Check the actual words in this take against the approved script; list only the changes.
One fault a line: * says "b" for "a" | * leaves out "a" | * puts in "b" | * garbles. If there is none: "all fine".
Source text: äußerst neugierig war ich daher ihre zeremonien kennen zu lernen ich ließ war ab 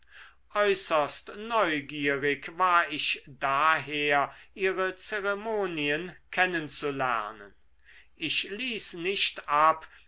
* says "nicht" for "war"